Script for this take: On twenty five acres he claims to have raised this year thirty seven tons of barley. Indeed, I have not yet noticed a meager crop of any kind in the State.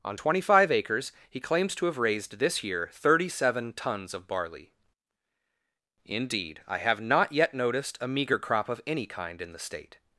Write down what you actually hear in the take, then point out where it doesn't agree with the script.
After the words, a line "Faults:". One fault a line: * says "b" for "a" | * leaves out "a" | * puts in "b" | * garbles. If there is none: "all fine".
On twenty five acres he claims to have raised this year thirty seven tons of barley. Indeed, I have not yet noticed a meager crop of any kind in the State.
Faults:
all fine